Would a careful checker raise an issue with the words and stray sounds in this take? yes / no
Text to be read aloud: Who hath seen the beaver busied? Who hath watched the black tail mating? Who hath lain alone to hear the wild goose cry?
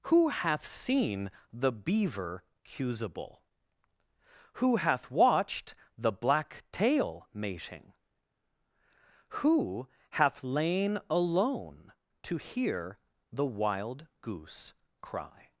yes